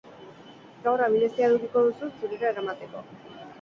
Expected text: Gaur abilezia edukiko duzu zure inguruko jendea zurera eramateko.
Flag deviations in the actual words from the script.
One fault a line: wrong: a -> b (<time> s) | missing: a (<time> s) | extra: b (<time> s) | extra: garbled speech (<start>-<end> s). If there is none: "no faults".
missing: zure inguruko jendea (2.1 s)